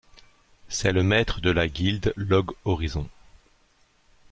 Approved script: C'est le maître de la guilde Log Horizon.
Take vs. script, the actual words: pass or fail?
pass